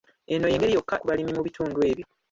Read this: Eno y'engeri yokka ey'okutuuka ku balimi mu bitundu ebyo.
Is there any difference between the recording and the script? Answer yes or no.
yes